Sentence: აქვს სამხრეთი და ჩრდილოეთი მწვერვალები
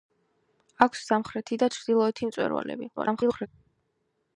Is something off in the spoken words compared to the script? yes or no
yes